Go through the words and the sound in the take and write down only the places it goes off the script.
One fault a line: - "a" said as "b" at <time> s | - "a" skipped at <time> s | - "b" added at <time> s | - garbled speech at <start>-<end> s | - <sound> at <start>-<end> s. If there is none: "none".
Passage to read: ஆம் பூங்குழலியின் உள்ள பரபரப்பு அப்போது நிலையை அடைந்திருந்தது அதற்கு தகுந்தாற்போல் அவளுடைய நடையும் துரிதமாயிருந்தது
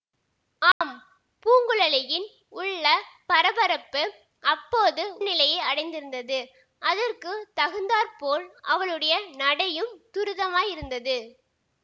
- dropout at 0.7-0.8 s